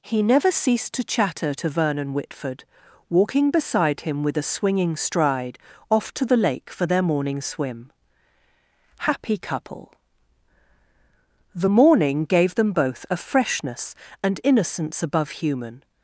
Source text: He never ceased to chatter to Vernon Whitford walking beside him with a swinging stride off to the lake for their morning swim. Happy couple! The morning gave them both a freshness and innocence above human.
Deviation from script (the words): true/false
false